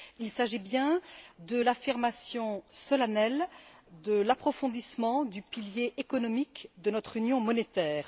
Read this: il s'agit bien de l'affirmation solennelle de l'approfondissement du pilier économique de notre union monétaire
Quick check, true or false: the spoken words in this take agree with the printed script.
true